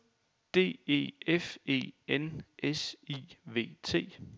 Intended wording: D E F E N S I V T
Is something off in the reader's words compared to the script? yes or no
no